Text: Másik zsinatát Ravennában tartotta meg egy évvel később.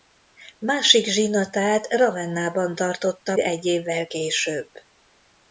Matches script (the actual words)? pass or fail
fail